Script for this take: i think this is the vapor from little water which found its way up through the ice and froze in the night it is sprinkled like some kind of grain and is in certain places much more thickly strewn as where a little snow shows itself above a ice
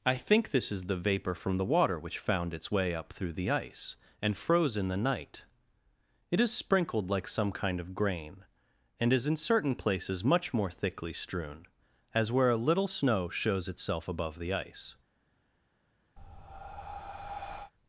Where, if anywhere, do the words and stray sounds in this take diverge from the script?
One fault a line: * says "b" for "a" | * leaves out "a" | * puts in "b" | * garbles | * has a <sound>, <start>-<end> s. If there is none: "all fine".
* says "the" for "little"
* says "the" for "a"
* has a breath, 16.2-17.7 s